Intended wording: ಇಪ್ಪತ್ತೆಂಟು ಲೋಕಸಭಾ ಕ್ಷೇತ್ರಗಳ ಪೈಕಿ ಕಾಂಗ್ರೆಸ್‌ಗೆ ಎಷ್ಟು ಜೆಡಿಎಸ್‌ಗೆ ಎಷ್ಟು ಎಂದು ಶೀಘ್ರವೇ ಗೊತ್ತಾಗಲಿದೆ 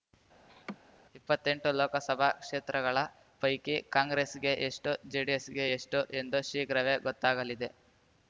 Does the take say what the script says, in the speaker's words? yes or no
yes